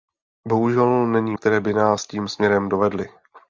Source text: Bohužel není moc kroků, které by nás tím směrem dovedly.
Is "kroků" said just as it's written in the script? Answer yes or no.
no